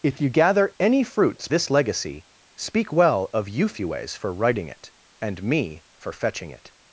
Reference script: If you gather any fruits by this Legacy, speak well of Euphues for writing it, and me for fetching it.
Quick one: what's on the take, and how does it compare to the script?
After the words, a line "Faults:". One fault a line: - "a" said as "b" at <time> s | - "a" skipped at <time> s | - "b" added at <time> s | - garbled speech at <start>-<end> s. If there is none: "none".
If you gather any fruits this Legacy, speak well of Euphues for writing it, and me for fetching it.
Faults:
- "by" skipped at 1.5 s